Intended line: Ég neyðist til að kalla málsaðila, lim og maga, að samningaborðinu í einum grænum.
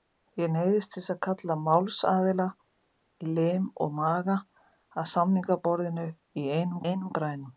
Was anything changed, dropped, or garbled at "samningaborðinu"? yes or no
no